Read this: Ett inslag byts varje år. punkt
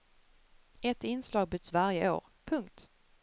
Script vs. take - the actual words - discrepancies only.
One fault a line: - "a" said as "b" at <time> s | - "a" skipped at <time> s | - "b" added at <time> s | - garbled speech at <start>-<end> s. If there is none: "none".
none